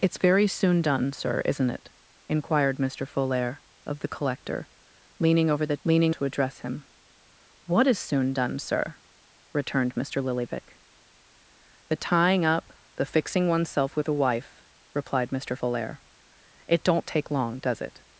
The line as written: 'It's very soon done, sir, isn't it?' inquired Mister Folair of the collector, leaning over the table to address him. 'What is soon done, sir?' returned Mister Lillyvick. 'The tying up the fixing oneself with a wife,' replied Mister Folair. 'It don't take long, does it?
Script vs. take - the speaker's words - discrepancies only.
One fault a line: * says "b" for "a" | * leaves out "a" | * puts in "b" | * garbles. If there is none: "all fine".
* says "leaning" for "table"